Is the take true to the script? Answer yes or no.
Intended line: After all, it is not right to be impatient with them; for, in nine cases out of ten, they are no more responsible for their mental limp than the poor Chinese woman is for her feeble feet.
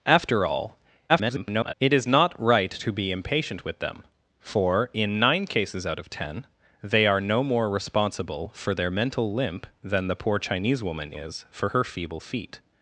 no